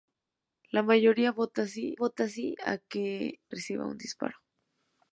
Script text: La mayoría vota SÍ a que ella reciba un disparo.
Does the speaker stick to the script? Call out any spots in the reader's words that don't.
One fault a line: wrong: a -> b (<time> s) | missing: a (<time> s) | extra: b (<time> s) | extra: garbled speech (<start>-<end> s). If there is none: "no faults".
extra: vota SÍ (1.9 s)
missing: ella (3.4 s)